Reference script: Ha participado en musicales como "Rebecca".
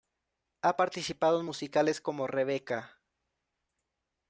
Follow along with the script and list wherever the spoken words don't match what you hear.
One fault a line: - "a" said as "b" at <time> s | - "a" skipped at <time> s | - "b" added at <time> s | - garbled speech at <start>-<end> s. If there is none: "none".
none